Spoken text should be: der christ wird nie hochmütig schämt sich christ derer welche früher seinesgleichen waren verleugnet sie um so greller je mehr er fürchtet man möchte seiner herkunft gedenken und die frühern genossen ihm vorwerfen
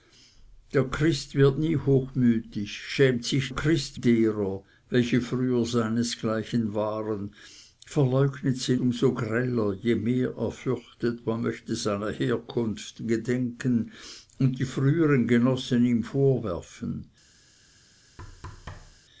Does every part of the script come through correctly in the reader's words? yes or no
yes